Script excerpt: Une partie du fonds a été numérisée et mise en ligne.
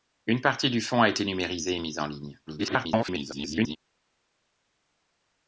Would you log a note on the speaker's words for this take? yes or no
yes